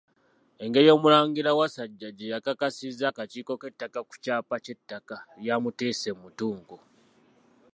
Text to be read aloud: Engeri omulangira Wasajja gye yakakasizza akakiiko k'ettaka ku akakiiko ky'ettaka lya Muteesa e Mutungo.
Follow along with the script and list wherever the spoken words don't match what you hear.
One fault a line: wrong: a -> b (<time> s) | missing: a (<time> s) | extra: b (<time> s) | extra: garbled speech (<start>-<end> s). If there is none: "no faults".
wrong: akakiiko -> kyapa (4.2 s)